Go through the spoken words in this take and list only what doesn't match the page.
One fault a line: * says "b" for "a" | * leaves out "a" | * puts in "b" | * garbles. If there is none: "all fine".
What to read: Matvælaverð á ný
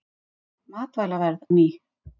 all fine